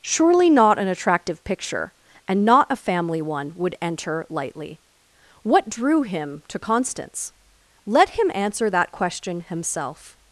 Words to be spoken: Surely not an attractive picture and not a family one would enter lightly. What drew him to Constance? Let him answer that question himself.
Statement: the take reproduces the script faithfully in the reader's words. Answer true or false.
true